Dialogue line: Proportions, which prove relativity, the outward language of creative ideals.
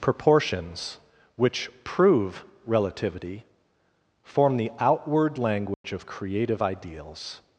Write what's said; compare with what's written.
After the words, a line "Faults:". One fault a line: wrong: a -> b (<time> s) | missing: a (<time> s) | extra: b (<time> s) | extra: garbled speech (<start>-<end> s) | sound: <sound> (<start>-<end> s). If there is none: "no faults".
Proportions, which prove relativity, form the outward language of creative ideals.
Faults:
extra: form (4.2 s)
sound: dropout (5.7-5.8 s)